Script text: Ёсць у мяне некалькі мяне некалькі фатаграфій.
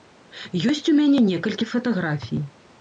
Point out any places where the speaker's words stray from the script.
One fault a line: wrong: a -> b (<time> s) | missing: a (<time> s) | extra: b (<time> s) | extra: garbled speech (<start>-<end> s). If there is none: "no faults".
missing: мяне некалькі (1.7 s)